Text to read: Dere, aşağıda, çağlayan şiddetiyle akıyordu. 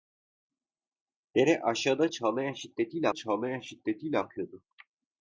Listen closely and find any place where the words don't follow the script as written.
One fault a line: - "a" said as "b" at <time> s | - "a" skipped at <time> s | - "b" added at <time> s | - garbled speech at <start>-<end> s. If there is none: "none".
- "çağlayan şiddetiyle" added at 3.1 s